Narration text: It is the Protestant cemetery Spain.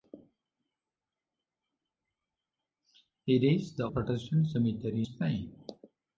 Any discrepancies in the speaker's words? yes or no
no